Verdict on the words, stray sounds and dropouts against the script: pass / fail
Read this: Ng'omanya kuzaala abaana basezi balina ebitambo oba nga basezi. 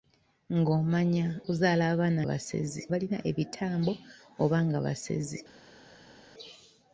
pass